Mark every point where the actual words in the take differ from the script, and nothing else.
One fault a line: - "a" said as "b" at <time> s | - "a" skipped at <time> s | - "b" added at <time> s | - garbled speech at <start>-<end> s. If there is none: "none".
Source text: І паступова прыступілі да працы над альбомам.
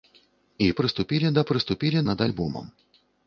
- "паступова" skipped at 0.7 s
- "працы" said as "прыступілі" at 1.5 s